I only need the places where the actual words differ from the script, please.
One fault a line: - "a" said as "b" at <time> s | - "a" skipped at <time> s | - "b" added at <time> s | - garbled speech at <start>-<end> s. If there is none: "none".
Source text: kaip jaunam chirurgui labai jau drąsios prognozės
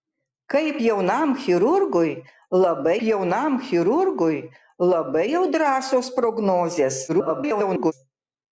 - "jaunam chirurgui labai" added at 3.1 s
- garbled speech at 7.1-7.9 s